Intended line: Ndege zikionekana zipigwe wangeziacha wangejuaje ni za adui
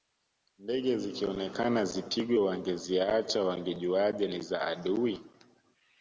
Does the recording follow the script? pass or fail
pass